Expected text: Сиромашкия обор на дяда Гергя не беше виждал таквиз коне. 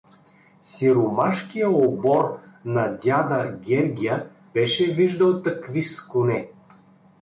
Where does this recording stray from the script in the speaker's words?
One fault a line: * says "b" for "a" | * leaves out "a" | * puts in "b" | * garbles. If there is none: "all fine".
* leaves out "не"